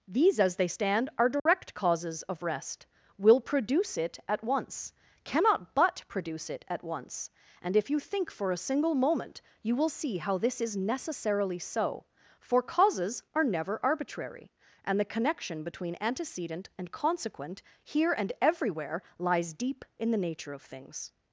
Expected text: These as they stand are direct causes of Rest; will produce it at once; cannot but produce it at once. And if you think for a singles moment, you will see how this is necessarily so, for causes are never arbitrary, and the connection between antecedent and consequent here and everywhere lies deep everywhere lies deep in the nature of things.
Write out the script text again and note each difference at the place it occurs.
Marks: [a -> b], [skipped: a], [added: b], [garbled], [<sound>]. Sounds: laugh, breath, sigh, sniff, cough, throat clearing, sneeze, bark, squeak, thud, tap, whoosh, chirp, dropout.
These as they stand are direct [dropout] causes of Rest; will produce it at once; cannot but produce it at once. And if you think for a [singles -> single] moment, you will see how this is necessarily so, for causes are never arbitrary, and the connection between antecedent and consequent here and everywhere lies deep [skipped: everywhere lies deep] in the nature of things.